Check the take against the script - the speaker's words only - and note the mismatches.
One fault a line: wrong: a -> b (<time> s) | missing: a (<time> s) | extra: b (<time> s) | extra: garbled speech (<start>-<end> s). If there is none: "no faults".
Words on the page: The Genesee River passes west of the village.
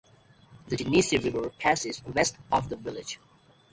no faults